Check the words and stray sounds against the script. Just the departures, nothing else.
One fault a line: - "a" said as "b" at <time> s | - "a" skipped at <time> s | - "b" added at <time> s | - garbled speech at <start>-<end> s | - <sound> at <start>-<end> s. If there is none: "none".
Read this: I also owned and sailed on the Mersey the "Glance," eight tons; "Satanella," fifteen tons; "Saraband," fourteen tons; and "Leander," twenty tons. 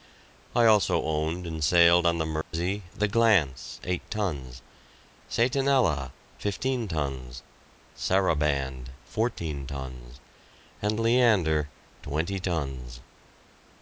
- dropout at 2.4-2.5 s